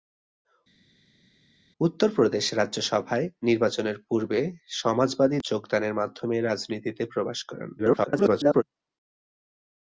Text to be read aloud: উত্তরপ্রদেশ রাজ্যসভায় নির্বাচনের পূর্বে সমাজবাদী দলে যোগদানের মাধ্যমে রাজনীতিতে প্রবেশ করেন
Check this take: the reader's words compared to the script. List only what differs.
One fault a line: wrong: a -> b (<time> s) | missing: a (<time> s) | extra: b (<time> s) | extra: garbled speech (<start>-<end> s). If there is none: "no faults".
missing: দলে (5.4 s)
extra: garbled speech (7.8-8.6 s)